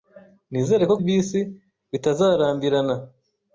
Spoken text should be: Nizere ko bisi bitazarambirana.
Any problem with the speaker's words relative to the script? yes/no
no